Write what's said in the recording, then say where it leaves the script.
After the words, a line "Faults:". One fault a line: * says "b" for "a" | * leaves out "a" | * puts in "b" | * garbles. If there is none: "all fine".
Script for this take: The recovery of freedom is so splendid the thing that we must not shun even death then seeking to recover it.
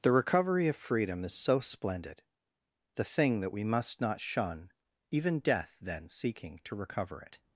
The recovery of freedom is so splendid the thing that we must not shun even death then seeking to recover it.
Faults:
all fine